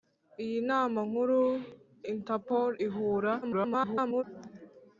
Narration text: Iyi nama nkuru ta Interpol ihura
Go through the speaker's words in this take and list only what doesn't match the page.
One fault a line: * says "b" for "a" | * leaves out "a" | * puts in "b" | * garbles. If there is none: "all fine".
* leaves out "ta"
* garbles